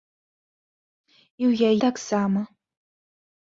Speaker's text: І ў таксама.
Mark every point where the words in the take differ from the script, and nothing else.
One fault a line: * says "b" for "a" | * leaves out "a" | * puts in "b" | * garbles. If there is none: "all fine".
all fine